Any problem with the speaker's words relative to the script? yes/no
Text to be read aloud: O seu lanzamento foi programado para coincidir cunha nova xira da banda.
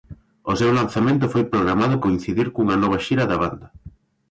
yes